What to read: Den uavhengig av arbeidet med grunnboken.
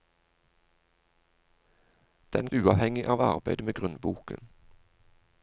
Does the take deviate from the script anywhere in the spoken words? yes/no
no